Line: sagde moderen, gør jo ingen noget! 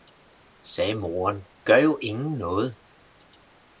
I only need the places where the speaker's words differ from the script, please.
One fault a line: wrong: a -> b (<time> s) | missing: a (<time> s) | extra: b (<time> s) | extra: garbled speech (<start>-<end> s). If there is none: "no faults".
no faults